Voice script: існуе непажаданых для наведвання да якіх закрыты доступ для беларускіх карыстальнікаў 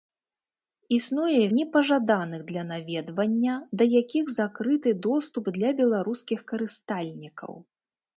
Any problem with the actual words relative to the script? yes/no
no